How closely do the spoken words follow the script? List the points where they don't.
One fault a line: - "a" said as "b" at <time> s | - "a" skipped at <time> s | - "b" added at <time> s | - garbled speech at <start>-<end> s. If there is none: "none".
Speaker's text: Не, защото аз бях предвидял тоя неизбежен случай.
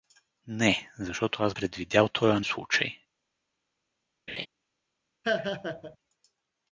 - "бях" skipped at 1.6 s
- "неизбежен" skipped at 2.4 s